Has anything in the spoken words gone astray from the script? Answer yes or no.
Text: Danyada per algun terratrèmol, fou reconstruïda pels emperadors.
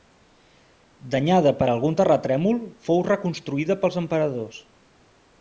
no